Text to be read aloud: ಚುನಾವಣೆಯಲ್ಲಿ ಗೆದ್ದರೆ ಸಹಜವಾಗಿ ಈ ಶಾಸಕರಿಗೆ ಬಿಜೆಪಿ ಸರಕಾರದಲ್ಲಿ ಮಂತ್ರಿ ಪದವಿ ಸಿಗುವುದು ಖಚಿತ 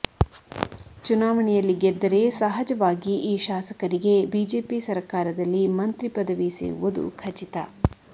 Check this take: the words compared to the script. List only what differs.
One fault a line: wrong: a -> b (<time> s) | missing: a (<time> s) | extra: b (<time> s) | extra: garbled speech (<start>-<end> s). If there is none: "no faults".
no faults